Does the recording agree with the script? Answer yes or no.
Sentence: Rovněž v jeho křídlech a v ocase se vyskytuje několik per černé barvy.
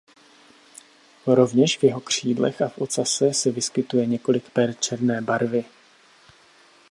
yes